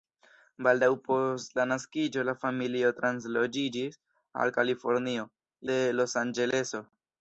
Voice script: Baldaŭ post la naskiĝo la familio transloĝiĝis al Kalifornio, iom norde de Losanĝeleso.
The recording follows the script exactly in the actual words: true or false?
false